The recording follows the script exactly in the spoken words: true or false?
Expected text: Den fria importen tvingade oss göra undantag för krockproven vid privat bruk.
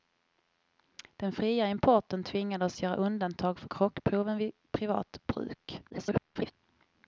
false